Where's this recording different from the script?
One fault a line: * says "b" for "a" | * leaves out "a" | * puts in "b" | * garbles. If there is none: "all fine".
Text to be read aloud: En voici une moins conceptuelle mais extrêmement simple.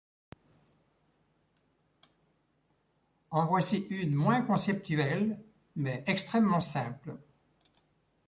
all fine